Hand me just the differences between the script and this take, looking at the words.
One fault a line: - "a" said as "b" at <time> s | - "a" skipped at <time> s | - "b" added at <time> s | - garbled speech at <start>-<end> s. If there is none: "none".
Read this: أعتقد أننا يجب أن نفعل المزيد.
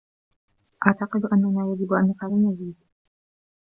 none